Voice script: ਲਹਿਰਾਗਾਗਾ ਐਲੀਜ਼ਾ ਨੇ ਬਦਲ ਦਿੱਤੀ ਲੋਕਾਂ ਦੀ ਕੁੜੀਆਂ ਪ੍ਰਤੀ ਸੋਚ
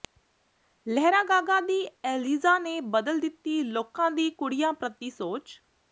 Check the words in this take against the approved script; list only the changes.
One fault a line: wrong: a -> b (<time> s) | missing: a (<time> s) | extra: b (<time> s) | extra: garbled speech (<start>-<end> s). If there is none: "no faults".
extra: ਦੀ (1.6 s)